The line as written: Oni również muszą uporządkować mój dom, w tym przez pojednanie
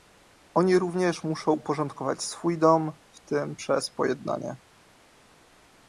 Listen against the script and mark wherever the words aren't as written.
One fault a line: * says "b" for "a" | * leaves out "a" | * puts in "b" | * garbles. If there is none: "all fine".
* says "swój" for "mój"